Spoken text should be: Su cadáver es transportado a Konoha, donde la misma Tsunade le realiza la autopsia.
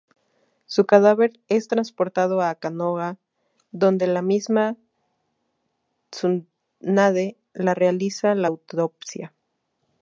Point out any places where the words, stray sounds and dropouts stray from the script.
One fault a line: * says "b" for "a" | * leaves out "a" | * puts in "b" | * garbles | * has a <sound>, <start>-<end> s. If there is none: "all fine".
all fine